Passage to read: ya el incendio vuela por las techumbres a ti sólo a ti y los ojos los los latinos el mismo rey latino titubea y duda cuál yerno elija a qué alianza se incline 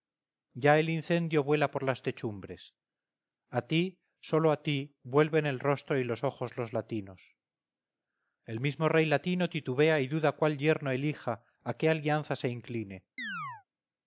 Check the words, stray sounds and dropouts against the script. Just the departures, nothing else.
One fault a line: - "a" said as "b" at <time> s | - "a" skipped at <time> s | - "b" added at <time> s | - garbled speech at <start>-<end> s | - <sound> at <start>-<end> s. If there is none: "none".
- "vuelven el rostro" added at 5.0 s
- "los" skipped at 6.7 s
- chirp at 13.2-13.6 s